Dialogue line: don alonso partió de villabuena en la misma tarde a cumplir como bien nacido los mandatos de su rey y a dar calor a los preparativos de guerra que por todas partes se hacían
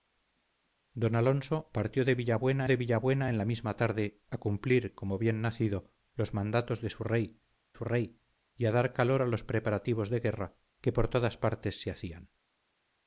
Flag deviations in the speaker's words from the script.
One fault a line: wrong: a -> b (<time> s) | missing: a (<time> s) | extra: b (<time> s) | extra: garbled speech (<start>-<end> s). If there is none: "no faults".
extra: de villabuena (2.7 s)
extra: su rey (7.7 s)